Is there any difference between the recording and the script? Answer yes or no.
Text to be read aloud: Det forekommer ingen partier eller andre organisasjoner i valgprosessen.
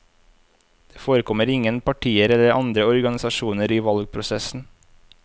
no